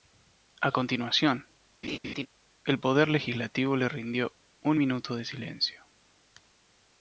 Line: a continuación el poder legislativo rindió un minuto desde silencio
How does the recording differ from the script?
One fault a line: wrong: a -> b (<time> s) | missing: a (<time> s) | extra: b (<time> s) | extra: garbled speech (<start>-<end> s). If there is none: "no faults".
extra: le (3.8 s)
wrong: desde -> de (5.1 s)